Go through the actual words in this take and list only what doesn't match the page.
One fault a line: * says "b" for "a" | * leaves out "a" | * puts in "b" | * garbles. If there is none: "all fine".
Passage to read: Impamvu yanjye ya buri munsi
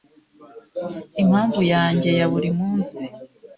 all fine